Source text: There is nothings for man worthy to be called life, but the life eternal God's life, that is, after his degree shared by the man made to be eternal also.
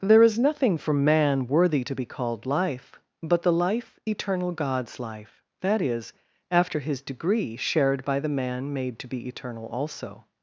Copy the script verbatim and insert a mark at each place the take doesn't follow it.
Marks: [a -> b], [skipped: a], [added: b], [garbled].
There is [nothings -> nothing] for man worthy to be called life, but the life eternal God's life, that is, after his degree shared by the man made to be eternal also.